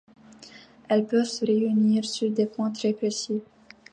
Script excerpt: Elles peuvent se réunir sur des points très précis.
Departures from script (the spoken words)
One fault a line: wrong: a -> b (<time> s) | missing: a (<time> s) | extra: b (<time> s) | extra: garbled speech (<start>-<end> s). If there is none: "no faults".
no faults